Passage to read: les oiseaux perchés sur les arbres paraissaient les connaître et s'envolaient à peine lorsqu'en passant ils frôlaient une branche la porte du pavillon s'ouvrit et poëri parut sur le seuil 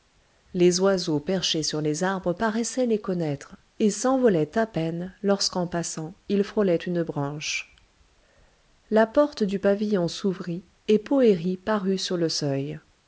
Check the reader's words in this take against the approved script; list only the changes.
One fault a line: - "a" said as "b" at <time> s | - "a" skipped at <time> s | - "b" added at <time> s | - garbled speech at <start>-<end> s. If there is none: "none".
none